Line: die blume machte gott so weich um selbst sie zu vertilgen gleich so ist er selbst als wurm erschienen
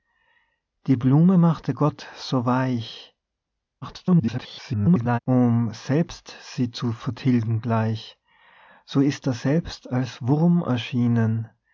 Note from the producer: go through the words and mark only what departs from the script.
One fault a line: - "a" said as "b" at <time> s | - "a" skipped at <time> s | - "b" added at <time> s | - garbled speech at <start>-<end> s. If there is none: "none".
- garbled speech at 3.8-5.2 s